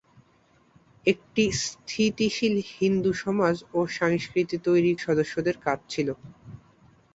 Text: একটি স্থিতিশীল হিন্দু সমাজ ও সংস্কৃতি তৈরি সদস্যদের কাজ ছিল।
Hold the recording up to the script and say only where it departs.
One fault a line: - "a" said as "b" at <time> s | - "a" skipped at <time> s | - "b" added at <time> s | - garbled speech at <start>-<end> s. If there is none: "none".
none